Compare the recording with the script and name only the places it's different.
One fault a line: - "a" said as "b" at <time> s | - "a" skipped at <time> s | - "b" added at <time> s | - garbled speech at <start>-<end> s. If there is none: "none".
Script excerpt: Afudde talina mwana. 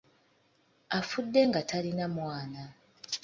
- "nga" added at 1.5 s